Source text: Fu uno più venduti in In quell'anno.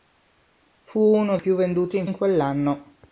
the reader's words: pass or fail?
pass